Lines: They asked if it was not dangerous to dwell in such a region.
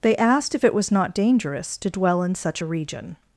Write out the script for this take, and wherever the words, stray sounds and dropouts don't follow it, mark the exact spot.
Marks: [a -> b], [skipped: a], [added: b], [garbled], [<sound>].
They asked if it was not dangerous to dwell in such a region.